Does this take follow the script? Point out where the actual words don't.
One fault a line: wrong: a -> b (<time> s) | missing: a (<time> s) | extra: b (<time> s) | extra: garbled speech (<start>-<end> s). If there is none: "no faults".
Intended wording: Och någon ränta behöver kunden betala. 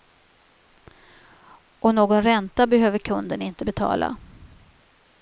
extra: inte (3.4 s)